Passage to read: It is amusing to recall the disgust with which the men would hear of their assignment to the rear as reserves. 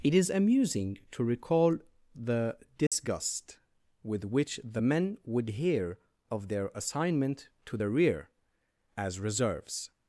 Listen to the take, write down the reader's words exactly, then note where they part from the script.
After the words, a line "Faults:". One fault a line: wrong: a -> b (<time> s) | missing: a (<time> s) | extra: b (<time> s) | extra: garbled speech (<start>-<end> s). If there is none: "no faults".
It is amusing to recall the disgust with which the men would hear of their assignment to the rear as reserves.
Faults:
no faults